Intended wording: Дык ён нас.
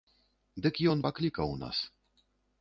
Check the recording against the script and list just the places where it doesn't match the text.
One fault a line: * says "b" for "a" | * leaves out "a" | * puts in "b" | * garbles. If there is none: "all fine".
* puts in "паклікаў"